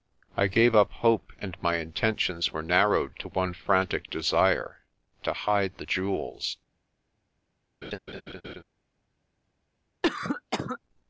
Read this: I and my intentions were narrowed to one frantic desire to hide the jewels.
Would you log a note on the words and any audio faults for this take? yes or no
yes